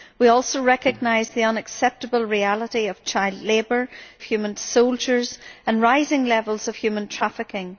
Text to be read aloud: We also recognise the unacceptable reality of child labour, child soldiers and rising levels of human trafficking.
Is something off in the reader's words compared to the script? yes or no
yes